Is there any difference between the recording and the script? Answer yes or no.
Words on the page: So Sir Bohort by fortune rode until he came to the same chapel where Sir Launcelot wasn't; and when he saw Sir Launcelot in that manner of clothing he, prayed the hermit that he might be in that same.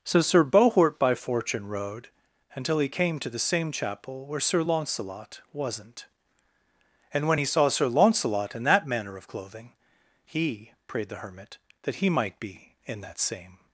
no